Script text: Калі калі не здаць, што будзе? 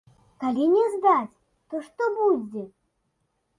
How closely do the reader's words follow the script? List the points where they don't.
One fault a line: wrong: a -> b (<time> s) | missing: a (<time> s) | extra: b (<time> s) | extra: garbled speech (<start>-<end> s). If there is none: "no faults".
missing: калі (0.6 s)
extra: то (1.7 s)